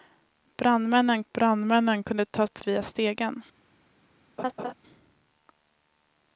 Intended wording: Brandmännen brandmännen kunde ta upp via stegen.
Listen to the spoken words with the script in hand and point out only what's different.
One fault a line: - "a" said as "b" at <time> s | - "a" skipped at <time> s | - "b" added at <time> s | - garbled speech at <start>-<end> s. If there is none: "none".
none